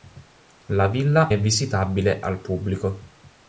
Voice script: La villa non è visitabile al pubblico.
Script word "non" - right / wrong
wrong